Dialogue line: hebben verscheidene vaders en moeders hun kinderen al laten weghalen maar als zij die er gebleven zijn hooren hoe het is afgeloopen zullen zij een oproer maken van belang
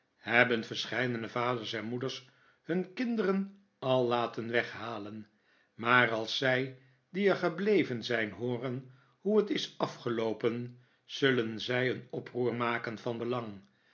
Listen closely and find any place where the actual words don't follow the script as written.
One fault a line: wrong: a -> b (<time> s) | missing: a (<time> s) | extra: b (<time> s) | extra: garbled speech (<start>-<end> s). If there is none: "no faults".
no faults